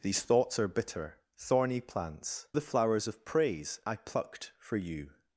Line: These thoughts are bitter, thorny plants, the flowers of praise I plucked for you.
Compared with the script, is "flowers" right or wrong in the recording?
right